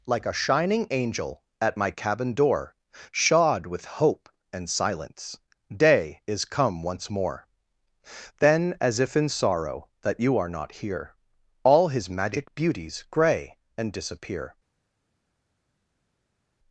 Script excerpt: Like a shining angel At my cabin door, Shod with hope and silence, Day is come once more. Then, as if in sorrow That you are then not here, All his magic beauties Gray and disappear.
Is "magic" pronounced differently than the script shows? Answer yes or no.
no